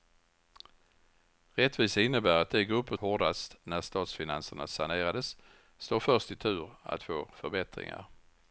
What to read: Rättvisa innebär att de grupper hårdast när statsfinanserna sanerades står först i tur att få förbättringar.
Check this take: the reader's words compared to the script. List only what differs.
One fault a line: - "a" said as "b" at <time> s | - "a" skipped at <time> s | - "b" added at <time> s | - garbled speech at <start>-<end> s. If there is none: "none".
none